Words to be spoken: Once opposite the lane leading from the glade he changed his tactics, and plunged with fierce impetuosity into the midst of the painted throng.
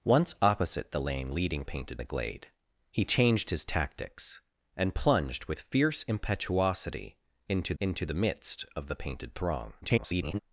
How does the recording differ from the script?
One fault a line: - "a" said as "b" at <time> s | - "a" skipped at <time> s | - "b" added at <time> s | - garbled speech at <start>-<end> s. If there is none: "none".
- "from" said as "painted" at 1.6 s
- "into" added at 7.8 s
- garbled speech at 9.8-10.4 s